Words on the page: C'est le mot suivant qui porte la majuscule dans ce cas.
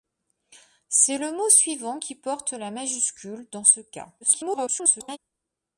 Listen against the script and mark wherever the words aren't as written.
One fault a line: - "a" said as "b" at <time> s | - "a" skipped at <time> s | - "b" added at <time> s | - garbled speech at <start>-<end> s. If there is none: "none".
- garbled speech at 4.2-5.2 s